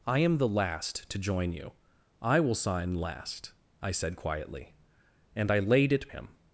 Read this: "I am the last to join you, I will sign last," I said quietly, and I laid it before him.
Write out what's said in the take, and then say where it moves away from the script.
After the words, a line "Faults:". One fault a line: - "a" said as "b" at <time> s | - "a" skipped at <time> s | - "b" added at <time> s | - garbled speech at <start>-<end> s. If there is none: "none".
"I am the last to join you, I will sign last," I said quietly, and I laid it him.
Faults:
- "before" skipped at 6.1 s